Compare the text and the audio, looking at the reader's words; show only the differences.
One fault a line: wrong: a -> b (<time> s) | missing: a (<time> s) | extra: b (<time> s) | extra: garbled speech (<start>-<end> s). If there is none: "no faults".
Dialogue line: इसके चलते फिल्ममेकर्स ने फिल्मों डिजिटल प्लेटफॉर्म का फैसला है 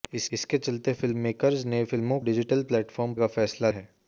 no faults